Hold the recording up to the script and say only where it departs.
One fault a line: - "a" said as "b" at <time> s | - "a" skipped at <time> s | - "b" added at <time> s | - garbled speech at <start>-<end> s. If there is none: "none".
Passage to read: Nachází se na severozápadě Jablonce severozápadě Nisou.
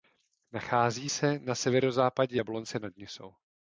- "severozápadě" said as "nad" at 2.8 s